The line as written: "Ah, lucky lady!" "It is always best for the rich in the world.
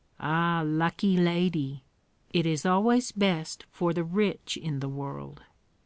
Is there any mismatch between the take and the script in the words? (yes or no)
no